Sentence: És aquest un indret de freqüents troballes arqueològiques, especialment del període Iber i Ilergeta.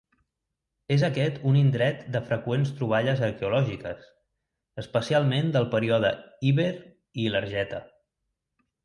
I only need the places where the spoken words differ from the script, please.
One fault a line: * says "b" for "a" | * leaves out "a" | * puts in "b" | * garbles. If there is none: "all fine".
all fine